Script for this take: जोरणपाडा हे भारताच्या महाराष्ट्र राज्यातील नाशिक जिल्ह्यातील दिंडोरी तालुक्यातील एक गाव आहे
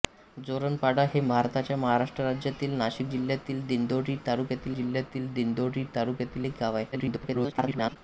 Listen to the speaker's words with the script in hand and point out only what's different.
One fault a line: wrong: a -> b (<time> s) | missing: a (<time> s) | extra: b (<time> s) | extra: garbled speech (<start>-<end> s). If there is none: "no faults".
extra: जिल्ह्यातील दिंडोरी तालुक्यातील (4.7 s)
extra: garbled speech (6.9-8.0 s)